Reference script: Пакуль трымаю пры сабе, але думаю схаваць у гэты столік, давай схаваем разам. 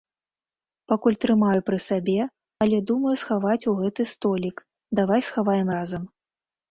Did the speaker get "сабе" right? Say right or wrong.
right